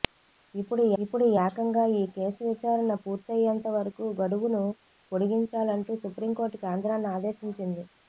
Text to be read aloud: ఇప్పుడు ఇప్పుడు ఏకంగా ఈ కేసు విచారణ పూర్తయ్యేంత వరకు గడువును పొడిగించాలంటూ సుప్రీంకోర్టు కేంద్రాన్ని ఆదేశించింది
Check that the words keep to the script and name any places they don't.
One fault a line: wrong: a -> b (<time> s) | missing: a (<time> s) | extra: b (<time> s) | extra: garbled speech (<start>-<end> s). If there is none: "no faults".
no faults